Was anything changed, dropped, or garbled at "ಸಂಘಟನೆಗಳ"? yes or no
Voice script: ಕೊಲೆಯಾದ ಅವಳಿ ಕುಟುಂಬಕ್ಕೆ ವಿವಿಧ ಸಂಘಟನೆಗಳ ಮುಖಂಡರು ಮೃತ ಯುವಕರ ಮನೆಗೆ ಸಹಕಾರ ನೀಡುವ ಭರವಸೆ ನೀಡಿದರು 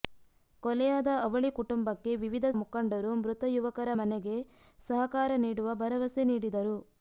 yes